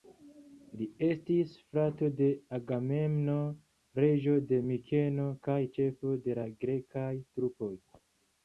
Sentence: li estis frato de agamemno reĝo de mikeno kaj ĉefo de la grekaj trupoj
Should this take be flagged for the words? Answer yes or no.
no